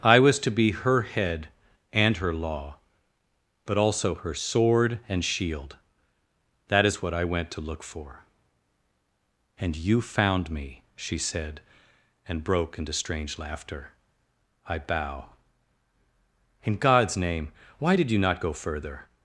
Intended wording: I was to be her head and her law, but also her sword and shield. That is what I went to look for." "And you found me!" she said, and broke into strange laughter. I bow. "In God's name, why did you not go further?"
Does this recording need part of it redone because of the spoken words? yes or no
no